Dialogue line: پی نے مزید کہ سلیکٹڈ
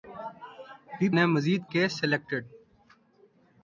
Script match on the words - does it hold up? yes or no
yes